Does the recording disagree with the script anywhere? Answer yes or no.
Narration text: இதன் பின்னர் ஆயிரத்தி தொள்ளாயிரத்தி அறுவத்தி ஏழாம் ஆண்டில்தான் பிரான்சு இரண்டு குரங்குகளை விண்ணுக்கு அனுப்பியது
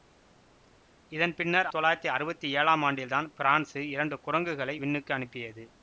yes